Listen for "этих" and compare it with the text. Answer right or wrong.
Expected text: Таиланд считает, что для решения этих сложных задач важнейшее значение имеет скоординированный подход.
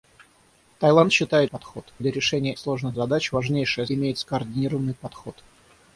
wrong